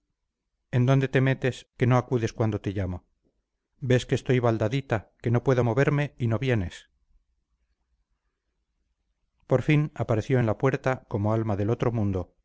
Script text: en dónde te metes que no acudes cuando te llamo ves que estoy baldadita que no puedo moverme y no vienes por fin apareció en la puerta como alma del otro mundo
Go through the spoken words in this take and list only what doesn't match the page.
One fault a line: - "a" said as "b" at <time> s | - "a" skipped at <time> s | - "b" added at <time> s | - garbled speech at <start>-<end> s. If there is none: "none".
none